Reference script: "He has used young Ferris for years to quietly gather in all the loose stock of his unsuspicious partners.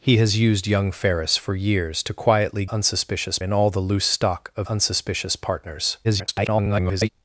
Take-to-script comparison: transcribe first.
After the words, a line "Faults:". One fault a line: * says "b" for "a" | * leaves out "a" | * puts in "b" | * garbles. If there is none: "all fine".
"He has used young Ferris for years to quietly unsuspicious in all the loose stock of unsuspicious partners. [garbled]
Faults:
* says "unsuspicious" for "gather"
* leaves out "his"
* garbles